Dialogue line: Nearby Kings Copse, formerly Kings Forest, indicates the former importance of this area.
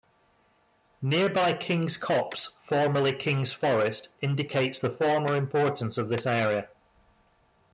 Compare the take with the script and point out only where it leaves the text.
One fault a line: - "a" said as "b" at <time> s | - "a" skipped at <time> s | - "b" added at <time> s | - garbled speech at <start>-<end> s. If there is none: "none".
none